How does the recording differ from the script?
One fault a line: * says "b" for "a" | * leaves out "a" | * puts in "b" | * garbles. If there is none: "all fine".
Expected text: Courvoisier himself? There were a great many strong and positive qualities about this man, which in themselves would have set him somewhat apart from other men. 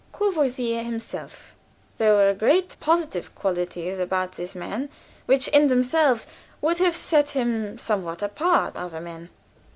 * leaves out "many strong and"
* leaves out "from"